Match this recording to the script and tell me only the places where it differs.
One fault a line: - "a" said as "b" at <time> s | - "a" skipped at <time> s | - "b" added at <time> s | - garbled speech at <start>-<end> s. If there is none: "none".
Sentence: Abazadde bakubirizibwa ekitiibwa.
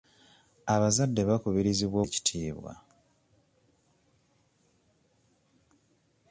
none